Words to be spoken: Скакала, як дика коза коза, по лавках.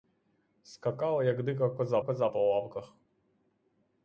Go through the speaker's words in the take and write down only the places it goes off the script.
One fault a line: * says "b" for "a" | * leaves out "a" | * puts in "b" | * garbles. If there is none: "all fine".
all fine